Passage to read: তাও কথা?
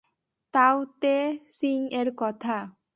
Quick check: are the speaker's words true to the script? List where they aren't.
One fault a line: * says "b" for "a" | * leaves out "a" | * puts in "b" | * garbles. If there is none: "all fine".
* puts in "তে চিং এর"